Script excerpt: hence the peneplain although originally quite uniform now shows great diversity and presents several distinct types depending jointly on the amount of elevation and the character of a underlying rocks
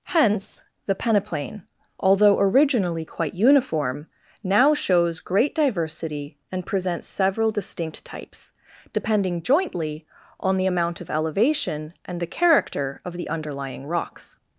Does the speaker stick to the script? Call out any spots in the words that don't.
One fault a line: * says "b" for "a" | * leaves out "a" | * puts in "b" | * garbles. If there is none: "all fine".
* says "the" for "a"